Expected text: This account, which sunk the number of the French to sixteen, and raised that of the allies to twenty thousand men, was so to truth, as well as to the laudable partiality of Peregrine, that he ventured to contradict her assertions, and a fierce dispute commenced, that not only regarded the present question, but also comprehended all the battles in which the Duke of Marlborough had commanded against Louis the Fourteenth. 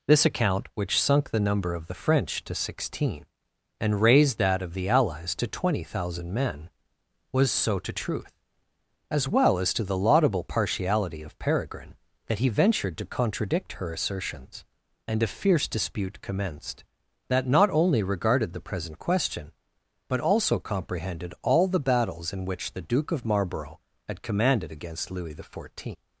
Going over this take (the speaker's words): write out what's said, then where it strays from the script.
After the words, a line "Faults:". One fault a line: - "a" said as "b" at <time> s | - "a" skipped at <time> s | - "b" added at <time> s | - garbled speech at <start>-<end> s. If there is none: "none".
This account, which sunk the number of the French to sixteen, and raised that of the allies to twenty thousand men, was so to truth, as well as to the laudable partiality of Peregrine, that he ventured to contradict her assertions, and a fierce dispute commenced, that not only regarded the present question, but also comprehended all the battles in which the Duke of Marlborough had commanded against Louis the Fourteenth.
Faults:
none